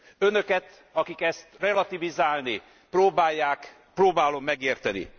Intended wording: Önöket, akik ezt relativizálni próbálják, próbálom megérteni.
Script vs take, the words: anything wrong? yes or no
no